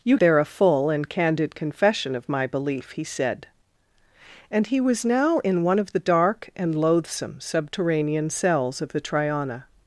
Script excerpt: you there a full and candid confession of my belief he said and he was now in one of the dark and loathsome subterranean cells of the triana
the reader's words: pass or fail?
pass